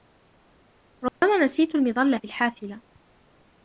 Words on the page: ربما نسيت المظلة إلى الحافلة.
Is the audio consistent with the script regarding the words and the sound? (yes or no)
no